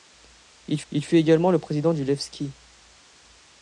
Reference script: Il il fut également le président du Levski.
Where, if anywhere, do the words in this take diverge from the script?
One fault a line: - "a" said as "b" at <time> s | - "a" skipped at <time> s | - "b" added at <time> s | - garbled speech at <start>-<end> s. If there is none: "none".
none